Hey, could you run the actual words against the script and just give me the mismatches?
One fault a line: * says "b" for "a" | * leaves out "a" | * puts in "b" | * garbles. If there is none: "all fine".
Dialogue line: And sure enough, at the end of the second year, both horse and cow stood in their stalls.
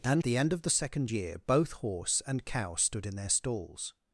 * leaves out "sure enough at"